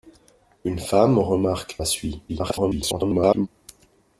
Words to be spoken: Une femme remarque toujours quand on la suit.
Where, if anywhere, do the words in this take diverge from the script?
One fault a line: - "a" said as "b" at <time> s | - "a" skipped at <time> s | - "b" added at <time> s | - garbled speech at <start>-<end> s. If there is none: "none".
- "toujours quand on" skipped at 1.8 s
- garbled speech at 2.3-3.5 s